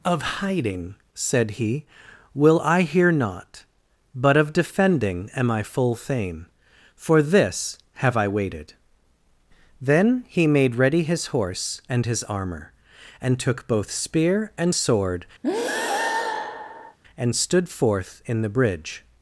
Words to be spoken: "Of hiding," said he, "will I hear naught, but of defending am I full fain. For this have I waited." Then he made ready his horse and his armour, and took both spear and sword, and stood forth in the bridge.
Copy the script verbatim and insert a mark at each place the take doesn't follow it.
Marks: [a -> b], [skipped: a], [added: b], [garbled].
"Of hiding," said he, "will I hear naught, but of defending am I full fain. For this have I waited." Then he made ready his horse and his armour, and took both spear and sword, and stood forth in the bridge.